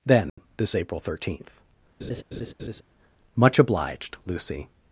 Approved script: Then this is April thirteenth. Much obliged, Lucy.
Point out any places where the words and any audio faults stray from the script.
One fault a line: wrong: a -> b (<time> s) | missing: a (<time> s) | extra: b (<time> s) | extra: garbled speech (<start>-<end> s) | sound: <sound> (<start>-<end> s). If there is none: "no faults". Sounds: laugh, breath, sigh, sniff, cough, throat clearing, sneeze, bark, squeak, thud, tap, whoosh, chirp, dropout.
sound: dropout (0.3-0.4 s)
missing: is (0.8 s)
sound: laugh (2.0-2.8 s)